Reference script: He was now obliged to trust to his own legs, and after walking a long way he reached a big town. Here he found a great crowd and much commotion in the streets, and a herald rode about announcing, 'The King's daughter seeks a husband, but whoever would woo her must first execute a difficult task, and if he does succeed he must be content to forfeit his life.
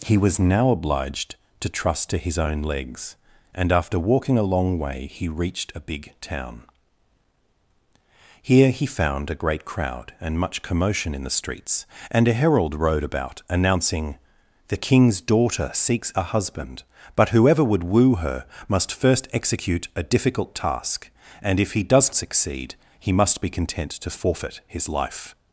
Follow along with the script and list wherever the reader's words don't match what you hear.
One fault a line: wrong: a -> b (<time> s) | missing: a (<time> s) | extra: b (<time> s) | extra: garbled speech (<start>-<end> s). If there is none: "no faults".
no faults